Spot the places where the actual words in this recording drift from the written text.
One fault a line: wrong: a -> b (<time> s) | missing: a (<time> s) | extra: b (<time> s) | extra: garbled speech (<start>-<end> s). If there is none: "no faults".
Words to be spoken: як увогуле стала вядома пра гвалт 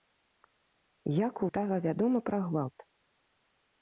missing: увогуле (1.4 s)